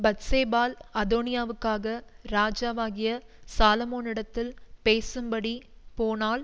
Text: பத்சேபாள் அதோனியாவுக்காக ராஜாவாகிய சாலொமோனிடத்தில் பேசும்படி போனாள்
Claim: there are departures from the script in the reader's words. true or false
false